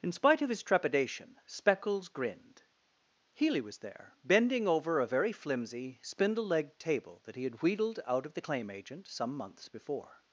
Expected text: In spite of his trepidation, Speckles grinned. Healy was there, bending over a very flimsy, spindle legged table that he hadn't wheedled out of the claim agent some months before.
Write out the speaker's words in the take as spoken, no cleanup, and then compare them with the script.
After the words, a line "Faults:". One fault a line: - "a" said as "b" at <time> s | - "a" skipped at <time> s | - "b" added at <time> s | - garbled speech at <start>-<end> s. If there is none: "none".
In spite of his trepidation, Speckles grinned. Healy was there, bending over a very flimsy, spindle legged table that he had wheedled out of the claim agent some months before.
Faults:
- "hadn't" said as "had" at 7.4 s